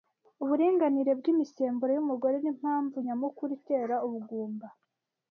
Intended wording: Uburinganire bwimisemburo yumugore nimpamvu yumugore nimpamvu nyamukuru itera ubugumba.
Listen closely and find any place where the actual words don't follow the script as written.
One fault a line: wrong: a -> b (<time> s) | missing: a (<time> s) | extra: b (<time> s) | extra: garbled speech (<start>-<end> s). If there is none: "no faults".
missing: yumugore nimpamvu (3.0 s)